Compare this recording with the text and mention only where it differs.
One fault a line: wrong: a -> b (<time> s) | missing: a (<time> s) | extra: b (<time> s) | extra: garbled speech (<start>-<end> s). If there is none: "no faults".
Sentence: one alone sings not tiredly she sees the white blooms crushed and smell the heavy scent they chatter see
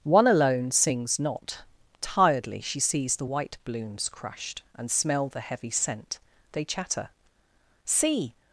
no faults